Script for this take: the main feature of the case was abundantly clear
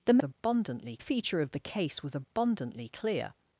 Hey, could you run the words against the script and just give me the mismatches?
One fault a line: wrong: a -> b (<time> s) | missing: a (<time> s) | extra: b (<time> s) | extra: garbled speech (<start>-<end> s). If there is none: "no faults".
wrong: main -> abundantly (0.2 s)